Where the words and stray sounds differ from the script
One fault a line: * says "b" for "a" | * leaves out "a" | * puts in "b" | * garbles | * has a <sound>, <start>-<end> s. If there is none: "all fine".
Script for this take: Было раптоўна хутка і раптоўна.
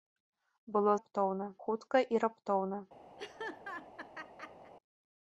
* has a laugh, 3.2-4.7 s